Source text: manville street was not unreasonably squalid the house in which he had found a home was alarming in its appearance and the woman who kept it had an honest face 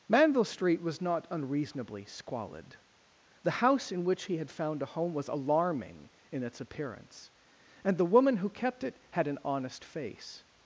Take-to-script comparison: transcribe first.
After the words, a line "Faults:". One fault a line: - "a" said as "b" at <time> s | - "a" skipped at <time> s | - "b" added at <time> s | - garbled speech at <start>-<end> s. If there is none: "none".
manville street was not unreasonably squalid the house in which he had found a home was alarming in its appearance and the woman who kept it had an honest face
Faults:
none